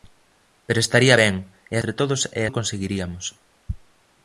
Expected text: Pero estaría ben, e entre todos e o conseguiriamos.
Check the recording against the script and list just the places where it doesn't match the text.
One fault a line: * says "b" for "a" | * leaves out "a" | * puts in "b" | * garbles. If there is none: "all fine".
all fine